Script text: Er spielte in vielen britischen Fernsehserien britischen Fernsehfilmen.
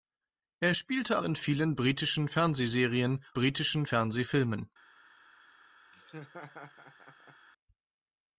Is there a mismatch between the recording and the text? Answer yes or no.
no